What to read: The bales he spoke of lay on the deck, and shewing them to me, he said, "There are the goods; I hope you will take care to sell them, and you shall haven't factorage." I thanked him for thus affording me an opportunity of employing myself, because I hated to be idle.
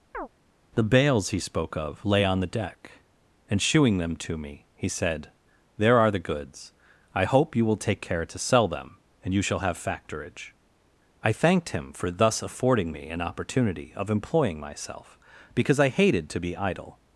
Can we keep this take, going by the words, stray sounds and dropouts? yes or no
no